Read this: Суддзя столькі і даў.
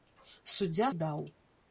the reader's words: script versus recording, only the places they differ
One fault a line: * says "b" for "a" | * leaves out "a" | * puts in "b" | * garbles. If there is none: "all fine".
* leaves out "столькі"